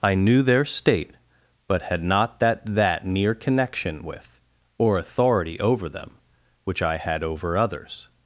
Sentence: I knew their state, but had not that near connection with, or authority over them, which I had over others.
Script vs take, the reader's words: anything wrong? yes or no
yes